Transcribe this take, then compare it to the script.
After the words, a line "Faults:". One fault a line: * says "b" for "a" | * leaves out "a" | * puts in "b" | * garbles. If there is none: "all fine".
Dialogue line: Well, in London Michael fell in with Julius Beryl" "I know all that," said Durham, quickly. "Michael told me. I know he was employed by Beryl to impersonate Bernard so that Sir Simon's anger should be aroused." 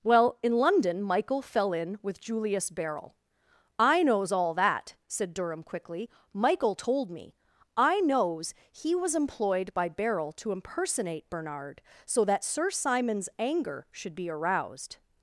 Well, in London Michael fell in with Julius Beryl" "I knows all that," said Durham, quickly. "Michael told me. I knows he was employed by Beryl to impersonate Bernard so that Sir Simon's anger should be aroused."
Faults:
* says "knows" for "know"
* says "knows" for "know"